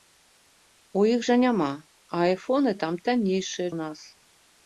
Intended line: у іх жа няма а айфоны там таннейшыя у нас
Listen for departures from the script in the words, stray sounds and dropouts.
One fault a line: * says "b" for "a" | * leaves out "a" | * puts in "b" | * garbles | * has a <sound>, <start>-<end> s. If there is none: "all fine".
all fine